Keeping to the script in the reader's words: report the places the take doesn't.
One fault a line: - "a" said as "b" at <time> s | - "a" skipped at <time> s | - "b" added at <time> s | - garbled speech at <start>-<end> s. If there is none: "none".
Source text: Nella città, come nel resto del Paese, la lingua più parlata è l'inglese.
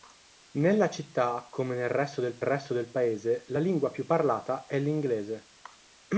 - "resto del" added at 2.4 s